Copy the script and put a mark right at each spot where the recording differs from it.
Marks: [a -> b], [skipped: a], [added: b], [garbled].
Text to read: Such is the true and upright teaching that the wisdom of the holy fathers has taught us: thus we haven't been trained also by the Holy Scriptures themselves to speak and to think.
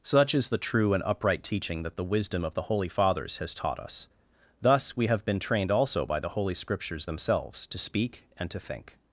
Such is the true and upright teaching that the wisdom of the holy fathers has taught us: thus we [haven't -> have] been trained also by the Holy Scriptures themselves to speak and to think.